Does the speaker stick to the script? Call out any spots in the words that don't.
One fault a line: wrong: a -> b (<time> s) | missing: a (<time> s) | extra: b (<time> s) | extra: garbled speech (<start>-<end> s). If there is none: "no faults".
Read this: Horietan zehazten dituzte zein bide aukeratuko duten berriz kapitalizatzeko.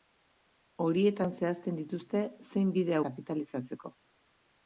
missing: aukeratuko duten berriz (3.0 s)